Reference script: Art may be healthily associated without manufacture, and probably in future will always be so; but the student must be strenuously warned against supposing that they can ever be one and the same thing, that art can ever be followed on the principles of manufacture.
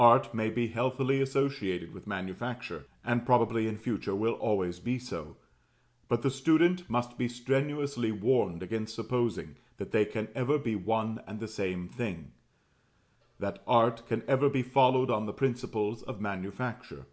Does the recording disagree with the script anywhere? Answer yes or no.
yes